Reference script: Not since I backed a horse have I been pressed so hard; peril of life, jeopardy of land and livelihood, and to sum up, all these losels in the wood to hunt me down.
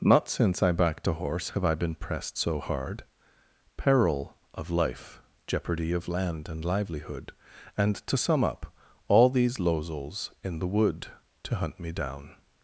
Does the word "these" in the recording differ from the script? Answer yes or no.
no